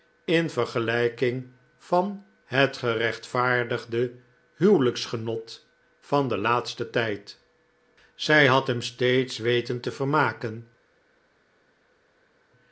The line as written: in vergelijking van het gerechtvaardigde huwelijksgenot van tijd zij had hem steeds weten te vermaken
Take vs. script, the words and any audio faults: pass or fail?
fail